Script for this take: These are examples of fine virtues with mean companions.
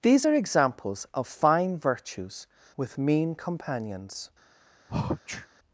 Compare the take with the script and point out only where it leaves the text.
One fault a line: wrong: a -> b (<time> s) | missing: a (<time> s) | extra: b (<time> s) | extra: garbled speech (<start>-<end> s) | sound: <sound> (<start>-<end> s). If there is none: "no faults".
sound: sneeze (4.9-5.5 s)